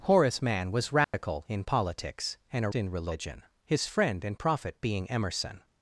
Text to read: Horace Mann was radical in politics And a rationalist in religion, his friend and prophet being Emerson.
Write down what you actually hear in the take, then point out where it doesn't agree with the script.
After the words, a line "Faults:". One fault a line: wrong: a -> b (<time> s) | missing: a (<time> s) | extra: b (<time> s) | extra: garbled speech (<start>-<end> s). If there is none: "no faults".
Horace Mann was radical in politics And a in religion, his friend and prophet being Emerson.
Faults:
missing: rationalist (2.7 s)